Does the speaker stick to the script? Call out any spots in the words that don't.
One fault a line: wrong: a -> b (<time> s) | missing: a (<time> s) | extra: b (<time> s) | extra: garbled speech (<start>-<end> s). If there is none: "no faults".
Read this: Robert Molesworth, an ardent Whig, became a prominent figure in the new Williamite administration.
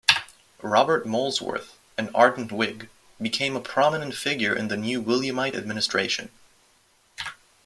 no faults